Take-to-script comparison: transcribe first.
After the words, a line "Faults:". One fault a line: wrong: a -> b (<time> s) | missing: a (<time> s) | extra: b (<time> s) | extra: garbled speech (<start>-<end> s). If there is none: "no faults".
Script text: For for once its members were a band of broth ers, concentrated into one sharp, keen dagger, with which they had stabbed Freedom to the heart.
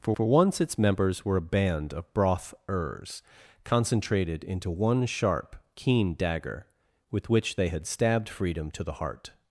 For for once its members were a band of broth ers, concentrated into one sharp, keen dagger, with which they had stabbed Freedom to the heart.
Faults:
no faults